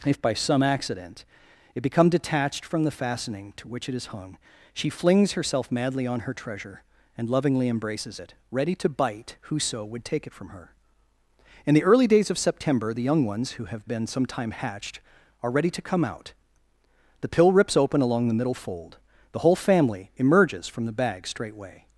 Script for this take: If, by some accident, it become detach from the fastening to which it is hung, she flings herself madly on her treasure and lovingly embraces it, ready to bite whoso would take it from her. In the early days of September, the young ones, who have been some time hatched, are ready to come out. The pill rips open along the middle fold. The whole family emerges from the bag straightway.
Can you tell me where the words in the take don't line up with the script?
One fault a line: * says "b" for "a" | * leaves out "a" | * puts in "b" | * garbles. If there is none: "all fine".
* says "detached" for "detach"